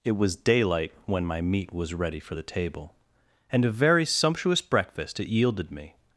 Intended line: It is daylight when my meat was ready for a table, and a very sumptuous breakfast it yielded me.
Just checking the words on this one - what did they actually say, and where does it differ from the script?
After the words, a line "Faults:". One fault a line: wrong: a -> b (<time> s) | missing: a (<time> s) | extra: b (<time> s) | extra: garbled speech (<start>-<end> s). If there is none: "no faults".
It was daylight when my meat was ready for the table, and a very sumptuous breakfast it yielded me.
Faults:
wrong: is -> was (0.1 s)
wrong: a -> the (2.3 s)